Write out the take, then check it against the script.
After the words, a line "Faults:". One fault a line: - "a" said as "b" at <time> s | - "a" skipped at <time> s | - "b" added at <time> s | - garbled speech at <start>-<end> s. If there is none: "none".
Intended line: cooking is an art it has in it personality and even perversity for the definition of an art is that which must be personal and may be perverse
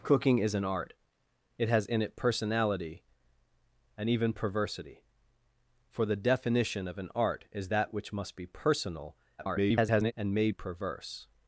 cooking is an art it has in it personality and even perversity for the definition of an art is that which must be personal [garbled] and may perverse
Faults:
- garbled speech at 9.4-10.1 s
- "be" skipped at 10.5 s